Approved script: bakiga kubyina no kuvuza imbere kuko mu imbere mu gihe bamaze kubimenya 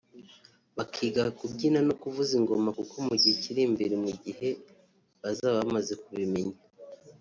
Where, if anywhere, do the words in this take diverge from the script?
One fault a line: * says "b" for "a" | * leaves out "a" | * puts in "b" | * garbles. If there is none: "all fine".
* says "ingoma" for "imbere"
* puts in "gihe kiri"
* puts in "bazaba"